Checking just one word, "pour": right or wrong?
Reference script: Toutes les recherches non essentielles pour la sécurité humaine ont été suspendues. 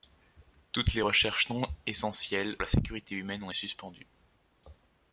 wrong